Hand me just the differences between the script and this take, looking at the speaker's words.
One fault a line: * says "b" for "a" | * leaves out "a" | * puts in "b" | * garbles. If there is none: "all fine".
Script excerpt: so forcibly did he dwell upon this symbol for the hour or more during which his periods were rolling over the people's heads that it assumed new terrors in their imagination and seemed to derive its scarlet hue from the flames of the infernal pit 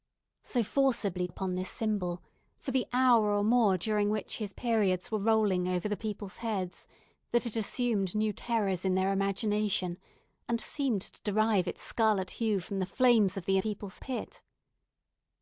* leaves out "did he dwell"
* says "people's" for "infernal"